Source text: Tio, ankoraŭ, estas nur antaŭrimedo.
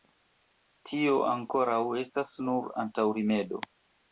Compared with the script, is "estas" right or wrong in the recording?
right